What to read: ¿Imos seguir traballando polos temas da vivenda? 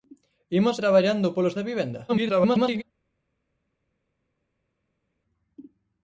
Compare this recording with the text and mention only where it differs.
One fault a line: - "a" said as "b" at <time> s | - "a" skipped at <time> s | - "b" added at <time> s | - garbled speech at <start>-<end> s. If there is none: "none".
- "seguir" skipped at 0.8 s
- "temas" skipped at 1.6 s
- garbled speech at 2.1-2.8 s